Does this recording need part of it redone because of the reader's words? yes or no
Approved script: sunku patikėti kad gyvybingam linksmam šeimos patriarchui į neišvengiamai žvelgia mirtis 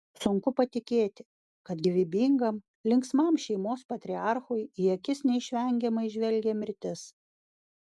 yes